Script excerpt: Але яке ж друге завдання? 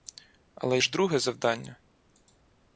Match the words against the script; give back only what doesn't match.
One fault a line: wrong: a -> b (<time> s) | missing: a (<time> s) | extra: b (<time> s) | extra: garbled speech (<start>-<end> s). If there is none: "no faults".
missing: яке (0.8 s)